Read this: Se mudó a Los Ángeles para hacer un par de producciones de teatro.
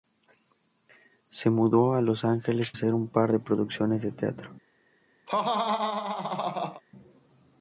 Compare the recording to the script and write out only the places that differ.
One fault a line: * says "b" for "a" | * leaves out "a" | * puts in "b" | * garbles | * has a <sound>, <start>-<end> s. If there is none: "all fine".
* leaves out "para"
* has a laugh, 5.3-6.8 s